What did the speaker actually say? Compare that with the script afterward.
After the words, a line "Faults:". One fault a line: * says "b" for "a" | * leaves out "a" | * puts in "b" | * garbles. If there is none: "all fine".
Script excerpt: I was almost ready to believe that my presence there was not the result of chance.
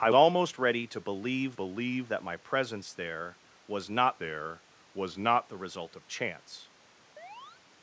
I almost ready to believe believe that my presence there was not there was not the result of chance.
Faults:
* leaves out "was"
* puts in "believe"
* puts in "there was not"